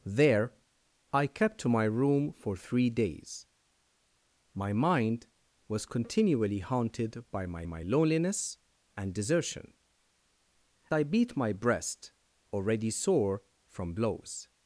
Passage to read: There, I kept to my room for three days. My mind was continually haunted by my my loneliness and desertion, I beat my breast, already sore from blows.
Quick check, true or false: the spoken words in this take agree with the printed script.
true